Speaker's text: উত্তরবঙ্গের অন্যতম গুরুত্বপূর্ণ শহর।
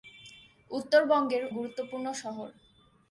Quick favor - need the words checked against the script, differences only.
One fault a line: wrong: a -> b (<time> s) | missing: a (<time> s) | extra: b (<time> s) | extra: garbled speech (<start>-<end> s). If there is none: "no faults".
missing: অন্যতম (1.4 s)